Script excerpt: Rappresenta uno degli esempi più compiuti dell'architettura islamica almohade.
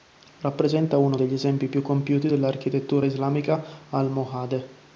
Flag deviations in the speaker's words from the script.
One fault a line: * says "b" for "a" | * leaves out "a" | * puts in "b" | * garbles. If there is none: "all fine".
all fine